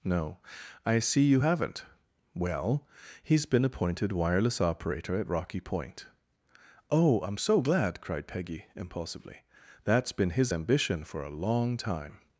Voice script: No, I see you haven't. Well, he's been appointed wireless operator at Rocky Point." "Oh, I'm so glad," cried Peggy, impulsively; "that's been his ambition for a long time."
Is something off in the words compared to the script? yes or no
no